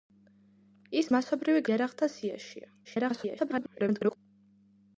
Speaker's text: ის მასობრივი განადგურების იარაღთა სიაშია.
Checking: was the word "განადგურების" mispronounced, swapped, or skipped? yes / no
yes